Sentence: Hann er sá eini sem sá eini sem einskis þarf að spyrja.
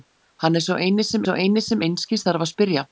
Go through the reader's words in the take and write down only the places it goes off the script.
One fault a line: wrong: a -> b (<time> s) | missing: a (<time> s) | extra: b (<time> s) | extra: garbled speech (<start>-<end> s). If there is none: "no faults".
no faults